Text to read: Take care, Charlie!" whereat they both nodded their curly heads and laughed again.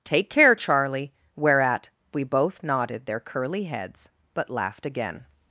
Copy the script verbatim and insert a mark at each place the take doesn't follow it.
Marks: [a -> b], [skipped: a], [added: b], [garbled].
Take care, Charlie!" whereat [they -> we] both nodded their curly heads [and -> but] laughed again.